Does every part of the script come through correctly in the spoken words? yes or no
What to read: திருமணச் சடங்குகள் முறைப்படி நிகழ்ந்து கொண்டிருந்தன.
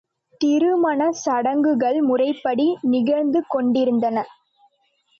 yes